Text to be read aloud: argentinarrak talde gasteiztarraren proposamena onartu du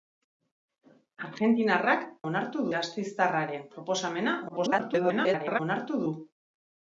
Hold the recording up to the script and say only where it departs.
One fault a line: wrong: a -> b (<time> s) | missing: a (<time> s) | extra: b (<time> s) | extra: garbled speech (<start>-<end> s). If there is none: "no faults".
wrong: talde -> onartu (2.3 s)
extra: garbled speech (4.5-5.6 s)